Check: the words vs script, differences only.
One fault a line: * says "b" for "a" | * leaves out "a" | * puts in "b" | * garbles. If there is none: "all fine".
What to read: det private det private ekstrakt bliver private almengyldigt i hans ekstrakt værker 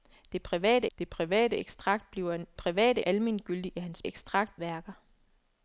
all fine